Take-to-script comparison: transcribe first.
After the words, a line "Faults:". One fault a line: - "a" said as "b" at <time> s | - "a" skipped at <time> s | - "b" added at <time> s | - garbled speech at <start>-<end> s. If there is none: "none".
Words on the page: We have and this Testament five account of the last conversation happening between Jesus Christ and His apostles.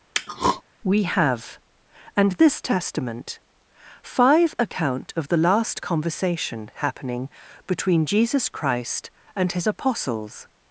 We have and this Testament five account of the last conversation happening between Jesus Christ and His apostles.
Faults:
none